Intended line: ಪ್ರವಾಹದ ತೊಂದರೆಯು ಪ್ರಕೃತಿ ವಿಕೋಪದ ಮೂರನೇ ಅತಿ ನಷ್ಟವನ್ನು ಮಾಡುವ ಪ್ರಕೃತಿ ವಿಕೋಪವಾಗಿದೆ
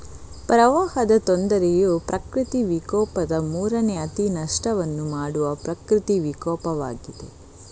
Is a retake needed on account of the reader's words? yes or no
no